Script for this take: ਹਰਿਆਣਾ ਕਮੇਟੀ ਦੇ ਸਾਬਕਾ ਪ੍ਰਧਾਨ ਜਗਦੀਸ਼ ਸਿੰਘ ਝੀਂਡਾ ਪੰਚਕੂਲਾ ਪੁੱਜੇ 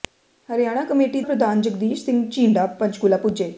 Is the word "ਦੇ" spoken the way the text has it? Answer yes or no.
no